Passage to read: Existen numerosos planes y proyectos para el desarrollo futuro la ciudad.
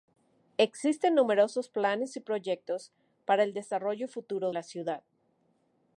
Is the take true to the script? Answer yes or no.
yes